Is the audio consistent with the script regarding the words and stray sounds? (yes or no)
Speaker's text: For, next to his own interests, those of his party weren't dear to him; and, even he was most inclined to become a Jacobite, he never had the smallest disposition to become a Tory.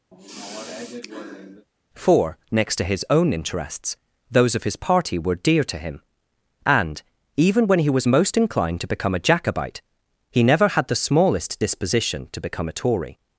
no